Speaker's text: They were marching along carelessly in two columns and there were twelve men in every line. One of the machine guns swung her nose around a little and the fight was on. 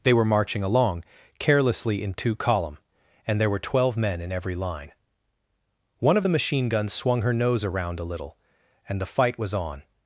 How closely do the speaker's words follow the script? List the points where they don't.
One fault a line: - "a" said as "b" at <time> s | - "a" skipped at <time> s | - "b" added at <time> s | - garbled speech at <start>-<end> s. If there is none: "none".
- "columns" said as "column" at 2.4 s